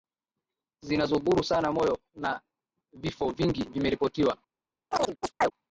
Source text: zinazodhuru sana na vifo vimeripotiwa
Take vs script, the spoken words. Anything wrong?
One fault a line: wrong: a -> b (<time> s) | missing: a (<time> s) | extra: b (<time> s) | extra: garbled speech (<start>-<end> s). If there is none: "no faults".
extra: moyo (1.7 s)
extra: vingi (3.3 s)